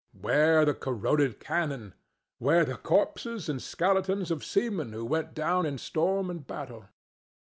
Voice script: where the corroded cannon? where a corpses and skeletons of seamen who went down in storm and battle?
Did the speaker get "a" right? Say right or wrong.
wrong